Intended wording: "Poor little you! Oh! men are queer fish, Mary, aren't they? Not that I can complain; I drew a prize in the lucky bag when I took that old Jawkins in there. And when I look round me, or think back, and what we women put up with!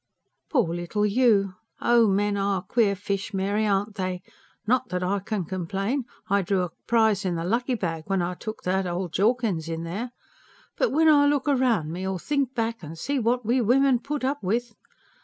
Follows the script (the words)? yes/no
no